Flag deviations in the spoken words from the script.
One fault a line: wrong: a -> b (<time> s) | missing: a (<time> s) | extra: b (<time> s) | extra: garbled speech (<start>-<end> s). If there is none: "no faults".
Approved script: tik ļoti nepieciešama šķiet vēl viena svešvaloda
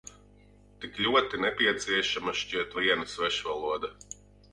missing: vēl (2.8 s)